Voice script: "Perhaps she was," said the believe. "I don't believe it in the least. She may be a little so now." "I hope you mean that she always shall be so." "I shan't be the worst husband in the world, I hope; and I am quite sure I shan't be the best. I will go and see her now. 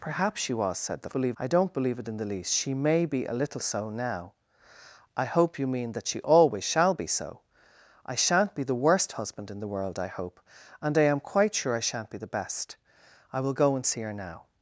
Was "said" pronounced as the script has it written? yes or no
yes